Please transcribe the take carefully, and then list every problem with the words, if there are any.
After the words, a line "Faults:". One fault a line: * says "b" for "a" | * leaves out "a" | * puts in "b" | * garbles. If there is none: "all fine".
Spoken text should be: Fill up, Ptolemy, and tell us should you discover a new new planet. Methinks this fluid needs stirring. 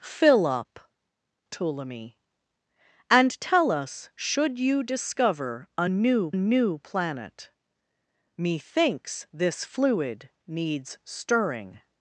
Fill up, Ptolemy, and tell us should you discover a new new planet. Methinks this fluid needs stirring.
Faults:
all fine